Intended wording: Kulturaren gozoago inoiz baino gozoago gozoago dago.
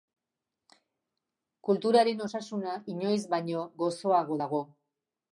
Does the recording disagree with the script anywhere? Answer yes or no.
yes